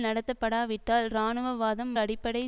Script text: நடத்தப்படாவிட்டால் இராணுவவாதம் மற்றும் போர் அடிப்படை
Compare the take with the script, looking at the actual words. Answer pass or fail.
fail